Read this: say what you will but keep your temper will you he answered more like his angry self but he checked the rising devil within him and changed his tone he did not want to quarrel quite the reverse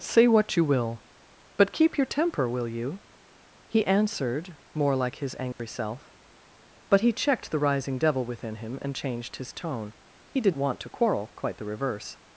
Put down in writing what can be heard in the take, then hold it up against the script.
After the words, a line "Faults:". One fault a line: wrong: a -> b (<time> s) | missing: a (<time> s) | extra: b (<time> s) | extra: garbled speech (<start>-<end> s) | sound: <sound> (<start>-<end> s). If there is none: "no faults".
say what you will but keep your temper will you he answered more like his angry self but he checked the rising devil within him and changed his tone he did want to quarrel quite the reverse
Faults:
sound: dropout (5.5-5.6 s)
missing: not (10.6 s)